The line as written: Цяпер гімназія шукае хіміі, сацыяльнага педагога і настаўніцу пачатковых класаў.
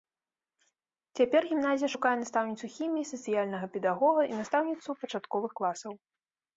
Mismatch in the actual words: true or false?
true